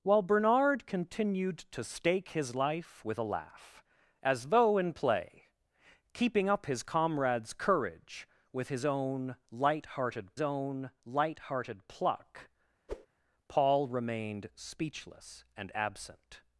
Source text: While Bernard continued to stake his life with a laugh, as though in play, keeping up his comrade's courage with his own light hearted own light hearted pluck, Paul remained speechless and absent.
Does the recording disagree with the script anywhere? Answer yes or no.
no